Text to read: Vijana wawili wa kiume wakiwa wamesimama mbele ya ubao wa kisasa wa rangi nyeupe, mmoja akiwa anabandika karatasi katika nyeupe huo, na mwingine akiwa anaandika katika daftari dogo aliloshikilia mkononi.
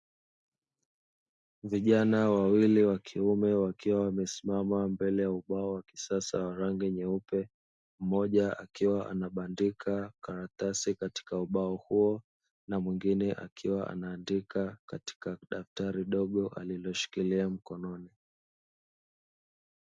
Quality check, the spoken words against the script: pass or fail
fail